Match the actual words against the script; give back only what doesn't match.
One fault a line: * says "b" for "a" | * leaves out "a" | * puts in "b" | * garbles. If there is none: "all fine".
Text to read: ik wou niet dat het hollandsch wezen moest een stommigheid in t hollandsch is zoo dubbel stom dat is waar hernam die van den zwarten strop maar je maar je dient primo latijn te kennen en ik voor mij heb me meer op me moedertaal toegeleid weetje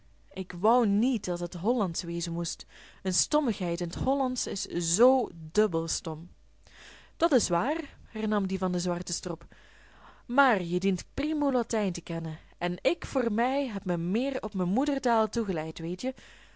* leaves out "maar je"